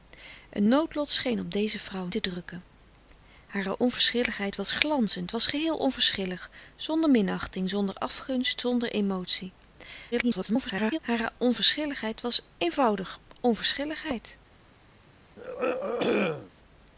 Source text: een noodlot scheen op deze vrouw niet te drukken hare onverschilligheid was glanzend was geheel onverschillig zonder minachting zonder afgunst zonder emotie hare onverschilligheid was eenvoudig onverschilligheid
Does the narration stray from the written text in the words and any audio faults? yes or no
yes